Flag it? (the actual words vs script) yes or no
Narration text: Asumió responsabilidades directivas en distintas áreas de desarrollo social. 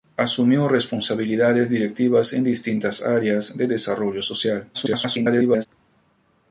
yes